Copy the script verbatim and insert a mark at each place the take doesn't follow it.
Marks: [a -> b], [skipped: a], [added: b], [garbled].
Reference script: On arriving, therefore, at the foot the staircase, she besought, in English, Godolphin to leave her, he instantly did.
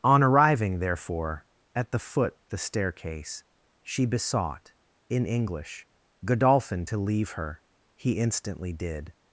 On arriving, therefore, at the foot the staircase, she besought, in English, Godolphin to leave her, he instantly did.